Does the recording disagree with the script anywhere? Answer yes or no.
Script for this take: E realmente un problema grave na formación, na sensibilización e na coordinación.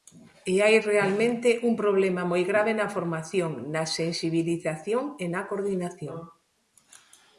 yes